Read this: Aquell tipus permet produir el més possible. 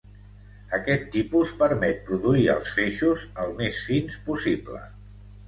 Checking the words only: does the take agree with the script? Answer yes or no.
no